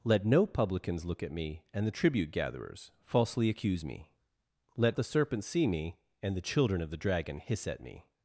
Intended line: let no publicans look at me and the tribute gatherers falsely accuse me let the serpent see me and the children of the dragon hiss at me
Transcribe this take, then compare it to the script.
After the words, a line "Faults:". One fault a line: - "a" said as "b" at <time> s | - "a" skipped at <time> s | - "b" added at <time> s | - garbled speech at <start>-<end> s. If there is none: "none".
let no publicans look at me and the tribute gatherers falsely accuse me let the serpent see me and the children of the dragon hiss at me
Faults:
none